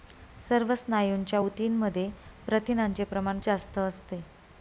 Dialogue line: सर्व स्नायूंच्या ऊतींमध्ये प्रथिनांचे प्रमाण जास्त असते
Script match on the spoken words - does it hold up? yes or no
yes